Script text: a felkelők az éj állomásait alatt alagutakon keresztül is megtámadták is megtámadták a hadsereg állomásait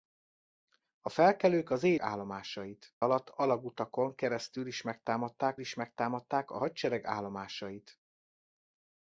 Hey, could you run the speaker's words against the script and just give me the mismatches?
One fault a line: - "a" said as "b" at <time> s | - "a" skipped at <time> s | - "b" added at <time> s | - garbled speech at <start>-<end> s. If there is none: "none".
none